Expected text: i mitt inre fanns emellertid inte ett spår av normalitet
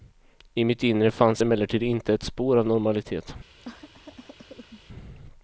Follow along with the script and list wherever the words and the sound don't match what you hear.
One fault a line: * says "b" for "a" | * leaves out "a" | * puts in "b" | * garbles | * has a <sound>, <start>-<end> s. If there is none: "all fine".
* has a cough, 3.6-4.8 s